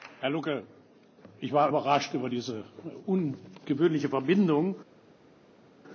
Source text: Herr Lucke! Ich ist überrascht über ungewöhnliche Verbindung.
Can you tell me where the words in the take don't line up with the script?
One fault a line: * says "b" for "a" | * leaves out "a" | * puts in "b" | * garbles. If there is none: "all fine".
* says "war" for "ist"
* puts in "diese"